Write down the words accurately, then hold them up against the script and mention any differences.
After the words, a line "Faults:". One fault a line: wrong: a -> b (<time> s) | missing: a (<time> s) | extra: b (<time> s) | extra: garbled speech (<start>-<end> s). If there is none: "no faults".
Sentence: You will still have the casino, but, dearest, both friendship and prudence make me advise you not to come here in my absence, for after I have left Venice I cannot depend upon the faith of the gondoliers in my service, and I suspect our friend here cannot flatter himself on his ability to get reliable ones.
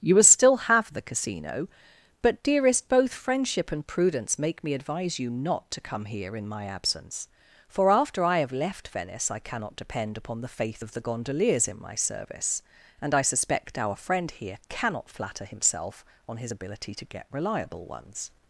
You will still have the casino, but, dearest, both friendship and prudence make me advise you not to come here in my absence, for after I have left Venice I cannot depend upon the faith of the gondoliers in my service, and I suspect our friend here cannot flatter himself on his ability to get reliable ones.
Faults:
no faults